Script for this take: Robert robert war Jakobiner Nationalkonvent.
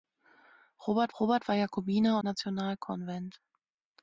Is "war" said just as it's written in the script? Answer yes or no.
yes